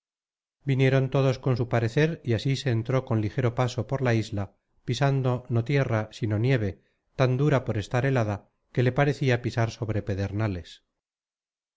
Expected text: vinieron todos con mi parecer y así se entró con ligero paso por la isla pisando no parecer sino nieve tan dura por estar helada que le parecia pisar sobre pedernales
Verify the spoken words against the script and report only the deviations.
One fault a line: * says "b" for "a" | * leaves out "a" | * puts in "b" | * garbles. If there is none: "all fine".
* says "su" for "mi"
* says "tierra" for "parecer"